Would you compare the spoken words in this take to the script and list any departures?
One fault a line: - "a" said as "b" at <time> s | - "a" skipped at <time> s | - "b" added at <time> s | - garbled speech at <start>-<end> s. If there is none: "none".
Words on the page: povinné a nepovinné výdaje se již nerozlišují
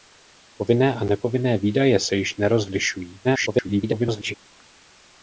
- garbled speech at 3.2-4.3 s